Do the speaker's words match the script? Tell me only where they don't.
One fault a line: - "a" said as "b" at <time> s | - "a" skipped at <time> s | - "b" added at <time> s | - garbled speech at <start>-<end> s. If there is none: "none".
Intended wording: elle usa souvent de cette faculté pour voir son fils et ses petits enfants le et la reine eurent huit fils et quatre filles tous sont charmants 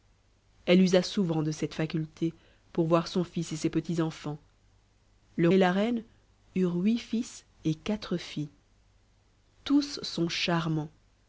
none